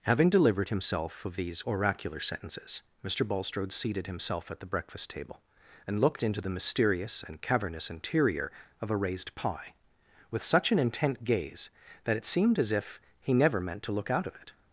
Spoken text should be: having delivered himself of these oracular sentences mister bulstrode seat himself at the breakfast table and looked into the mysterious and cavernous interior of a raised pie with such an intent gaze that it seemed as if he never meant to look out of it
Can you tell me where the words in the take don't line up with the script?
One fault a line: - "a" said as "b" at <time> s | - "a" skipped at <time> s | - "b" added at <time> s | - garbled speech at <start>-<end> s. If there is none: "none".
- "seat" said as "seated" at 3.7 s